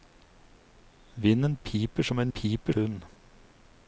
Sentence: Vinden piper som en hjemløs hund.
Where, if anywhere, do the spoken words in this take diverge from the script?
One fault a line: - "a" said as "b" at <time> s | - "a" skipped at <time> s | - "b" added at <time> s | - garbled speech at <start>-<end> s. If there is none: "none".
- "hjemløs" said as "piper" at 2.3 s